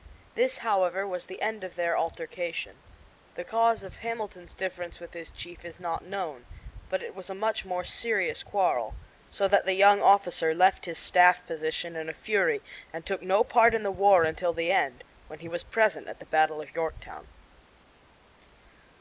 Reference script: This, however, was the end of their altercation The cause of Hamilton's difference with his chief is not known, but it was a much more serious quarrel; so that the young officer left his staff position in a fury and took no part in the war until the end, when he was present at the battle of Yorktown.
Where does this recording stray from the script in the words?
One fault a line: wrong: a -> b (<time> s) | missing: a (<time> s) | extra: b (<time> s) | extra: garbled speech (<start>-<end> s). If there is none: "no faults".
no faults